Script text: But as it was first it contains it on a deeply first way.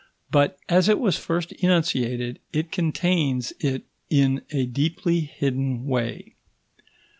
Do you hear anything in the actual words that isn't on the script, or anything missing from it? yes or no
yes